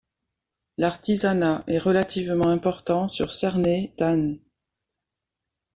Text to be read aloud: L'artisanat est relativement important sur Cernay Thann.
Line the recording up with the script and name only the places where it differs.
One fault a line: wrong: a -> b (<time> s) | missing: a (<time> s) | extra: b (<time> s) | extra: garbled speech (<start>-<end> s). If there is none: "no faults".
no faults